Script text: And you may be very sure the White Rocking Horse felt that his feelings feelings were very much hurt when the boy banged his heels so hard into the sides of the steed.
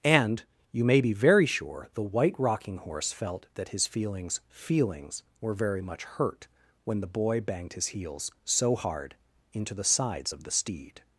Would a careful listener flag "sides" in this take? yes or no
no